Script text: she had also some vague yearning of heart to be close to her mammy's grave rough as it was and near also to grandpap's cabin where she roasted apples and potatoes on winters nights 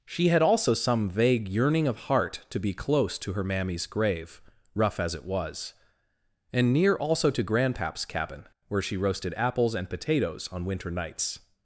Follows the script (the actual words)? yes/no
no